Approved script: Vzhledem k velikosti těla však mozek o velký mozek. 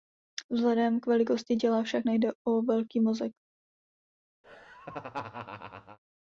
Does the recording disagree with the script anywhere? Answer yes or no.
yes